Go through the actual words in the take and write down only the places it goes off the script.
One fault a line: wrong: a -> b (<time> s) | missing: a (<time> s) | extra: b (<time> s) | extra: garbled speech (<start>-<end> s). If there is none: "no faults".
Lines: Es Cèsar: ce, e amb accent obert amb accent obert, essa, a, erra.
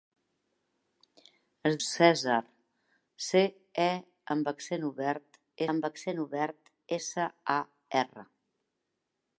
no faults